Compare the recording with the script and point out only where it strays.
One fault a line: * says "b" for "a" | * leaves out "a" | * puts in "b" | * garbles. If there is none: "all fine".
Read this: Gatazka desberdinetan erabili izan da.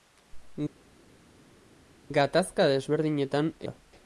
* leaves out "erabili izan"